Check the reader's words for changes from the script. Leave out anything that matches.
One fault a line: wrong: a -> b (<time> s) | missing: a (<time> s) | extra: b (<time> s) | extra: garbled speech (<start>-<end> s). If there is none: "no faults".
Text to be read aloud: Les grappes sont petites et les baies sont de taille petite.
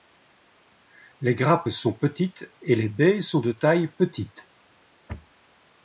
no faults